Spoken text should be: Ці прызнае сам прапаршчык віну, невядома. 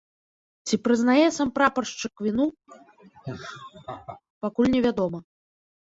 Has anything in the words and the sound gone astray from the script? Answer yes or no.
yes